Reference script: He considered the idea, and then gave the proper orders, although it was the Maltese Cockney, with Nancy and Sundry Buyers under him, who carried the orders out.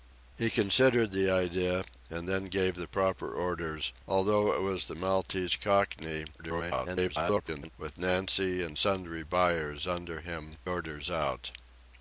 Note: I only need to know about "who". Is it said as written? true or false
false